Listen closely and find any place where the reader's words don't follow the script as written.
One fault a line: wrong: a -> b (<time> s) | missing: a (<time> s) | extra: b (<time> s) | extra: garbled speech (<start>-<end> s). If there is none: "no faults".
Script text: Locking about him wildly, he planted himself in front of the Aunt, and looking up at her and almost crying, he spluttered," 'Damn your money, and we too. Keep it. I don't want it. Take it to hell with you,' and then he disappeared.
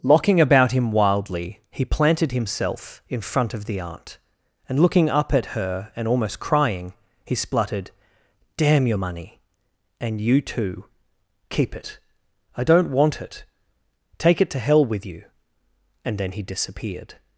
wrong: we -> you (10.2 s)